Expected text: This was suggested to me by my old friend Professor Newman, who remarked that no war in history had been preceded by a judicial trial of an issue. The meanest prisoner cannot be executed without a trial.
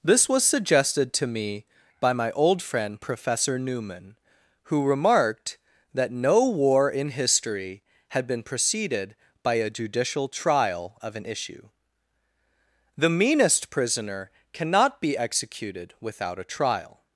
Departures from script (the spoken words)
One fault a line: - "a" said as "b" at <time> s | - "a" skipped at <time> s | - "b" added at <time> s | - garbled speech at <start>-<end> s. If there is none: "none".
none